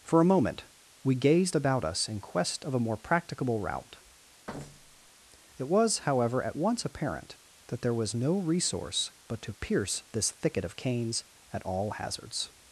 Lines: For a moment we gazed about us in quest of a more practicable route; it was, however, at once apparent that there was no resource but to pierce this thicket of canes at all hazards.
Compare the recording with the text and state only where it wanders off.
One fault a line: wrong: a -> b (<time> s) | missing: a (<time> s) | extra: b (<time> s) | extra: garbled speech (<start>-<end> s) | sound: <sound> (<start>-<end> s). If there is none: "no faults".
sound: thud (4.5-5.1 s)